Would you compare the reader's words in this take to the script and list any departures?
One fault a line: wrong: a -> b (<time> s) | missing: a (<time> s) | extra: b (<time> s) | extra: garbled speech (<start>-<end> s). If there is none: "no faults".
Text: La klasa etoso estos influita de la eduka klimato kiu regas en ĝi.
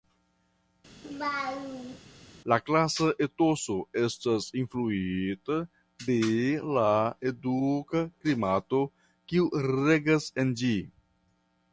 wrong: estos -> estas (4.0 s)